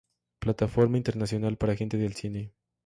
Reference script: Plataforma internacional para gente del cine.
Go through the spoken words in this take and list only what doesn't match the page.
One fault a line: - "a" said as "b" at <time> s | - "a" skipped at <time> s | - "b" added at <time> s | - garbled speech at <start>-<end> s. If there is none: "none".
none